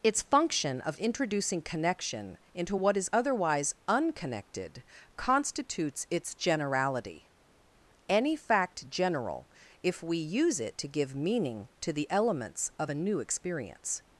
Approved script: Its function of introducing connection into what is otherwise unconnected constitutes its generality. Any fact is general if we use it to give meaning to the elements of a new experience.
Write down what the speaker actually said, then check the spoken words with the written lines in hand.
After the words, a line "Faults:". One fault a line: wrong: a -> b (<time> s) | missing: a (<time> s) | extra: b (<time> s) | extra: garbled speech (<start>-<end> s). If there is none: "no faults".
Its function of introducing connection into what is otherwise unconnected constitutes its generality. Any fact general if we use it to give meaning to the elements of a new experience.
Faults:
missing: is (8.9 s)